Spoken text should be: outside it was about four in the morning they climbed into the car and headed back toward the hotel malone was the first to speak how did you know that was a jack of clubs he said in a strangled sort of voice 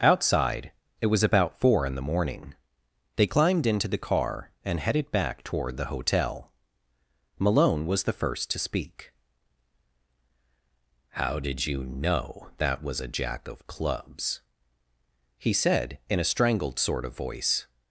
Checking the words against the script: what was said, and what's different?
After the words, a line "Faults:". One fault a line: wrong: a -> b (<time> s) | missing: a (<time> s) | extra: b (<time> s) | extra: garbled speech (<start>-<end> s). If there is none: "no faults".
outside it was about four in the morning they climbed into the car and headed back toward the hotel malone was the first to speak how did you know that was a jack of clubs he said in a strangled sort of voice
Faults:
no faults